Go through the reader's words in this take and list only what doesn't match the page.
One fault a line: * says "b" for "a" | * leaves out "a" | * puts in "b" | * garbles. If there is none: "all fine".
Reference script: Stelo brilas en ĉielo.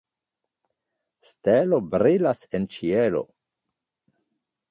all fine